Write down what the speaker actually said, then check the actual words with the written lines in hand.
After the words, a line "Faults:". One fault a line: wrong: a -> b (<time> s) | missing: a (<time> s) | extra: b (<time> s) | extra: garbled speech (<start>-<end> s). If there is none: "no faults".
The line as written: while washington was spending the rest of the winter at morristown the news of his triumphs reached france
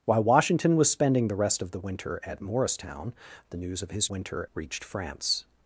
while washington was spending the rest of the winter at morristown the news of his winter reached france
Faults:
wrong: triumphs -> winter (4.1 s)